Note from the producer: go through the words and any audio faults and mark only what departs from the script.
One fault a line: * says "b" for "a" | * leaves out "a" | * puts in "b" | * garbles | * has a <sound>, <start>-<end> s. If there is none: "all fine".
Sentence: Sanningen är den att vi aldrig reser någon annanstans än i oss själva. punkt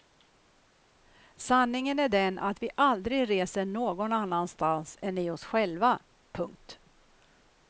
all fine